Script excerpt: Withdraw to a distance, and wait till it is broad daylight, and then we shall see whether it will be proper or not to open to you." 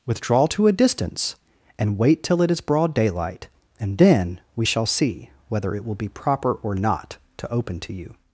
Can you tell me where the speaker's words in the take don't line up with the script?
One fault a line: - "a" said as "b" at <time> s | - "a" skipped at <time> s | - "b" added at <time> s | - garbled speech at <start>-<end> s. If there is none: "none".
none